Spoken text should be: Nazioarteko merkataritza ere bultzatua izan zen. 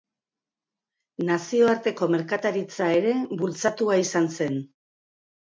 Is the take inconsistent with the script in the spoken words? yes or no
no